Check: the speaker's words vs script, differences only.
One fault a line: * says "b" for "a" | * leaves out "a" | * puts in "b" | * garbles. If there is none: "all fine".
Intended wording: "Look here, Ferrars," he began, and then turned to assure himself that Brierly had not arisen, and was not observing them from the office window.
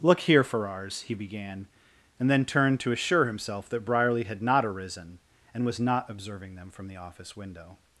all fine